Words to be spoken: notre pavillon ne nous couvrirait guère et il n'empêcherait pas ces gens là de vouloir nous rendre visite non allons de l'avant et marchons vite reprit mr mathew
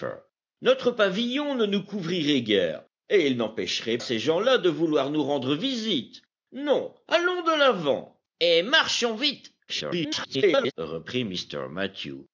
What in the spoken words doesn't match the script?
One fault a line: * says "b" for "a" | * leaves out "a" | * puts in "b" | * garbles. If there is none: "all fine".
* leaves out "pas"
* garbles